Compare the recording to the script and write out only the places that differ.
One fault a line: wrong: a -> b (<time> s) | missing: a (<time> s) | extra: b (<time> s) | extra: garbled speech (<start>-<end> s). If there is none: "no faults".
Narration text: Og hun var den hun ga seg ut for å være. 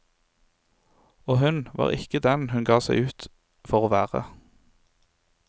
extra: ikke (1.9 s)